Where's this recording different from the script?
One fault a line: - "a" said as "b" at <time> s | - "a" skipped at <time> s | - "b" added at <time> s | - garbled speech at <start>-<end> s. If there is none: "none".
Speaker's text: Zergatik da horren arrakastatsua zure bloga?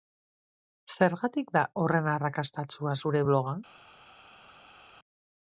none